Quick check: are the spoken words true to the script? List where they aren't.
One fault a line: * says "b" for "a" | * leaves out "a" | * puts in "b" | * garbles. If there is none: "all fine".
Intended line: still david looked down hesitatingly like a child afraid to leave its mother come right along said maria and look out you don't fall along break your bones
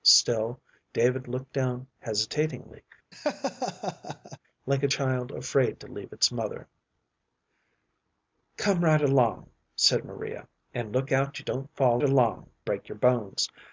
all fine